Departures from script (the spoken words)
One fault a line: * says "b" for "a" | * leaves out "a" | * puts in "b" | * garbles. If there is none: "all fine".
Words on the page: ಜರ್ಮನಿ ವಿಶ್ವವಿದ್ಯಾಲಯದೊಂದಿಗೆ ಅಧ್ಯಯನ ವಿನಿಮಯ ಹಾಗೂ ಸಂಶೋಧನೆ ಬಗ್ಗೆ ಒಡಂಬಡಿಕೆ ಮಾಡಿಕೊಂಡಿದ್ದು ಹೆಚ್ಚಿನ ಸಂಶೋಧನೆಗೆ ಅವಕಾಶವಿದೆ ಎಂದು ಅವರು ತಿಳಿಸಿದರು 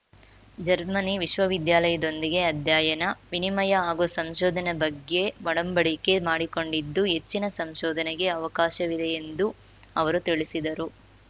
all fine